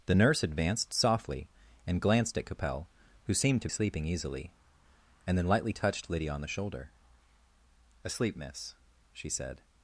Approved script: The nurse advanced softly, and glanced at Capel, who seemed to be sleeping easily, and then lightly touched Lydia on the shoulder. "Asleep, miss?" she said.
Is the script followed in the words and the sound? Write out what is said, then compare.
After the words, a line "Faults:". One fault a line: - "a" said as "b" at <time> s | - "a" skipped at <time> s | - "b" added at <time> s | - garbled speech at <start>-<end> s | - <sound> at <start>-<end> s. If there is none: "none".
The nurse advanced softly, and glanced at Capel, who seemed to sleeping easily, and then lightly touched Lydia on the shoulder. "Asleep, miss?" she said.
Faults:
- "be" skipped at 3.7 s